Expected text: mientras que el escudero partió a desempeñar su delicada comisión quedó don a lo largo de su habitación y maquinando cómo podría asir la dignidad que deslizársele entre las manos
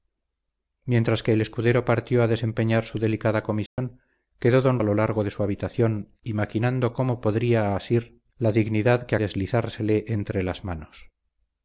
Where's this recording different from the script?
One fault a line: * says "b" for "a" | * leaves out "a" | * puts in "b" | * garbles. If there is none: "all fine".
all fine